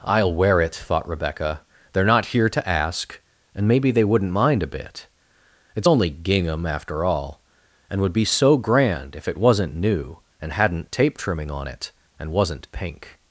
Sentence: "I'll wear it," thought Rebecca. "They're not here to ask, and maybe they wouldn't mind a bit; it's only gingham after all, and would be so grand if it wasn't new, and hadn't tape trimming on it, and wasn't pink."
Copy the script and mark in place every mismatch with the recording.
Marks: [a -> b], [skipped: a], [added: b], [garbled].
"I'll wear it," thought Rebecca. "They're not here to ask, and maybe they wouldn't mind a bit; it's only gingham after all, and would be so grand if it wasn't new, and hadn't tape trimming on it, and wasn't pink."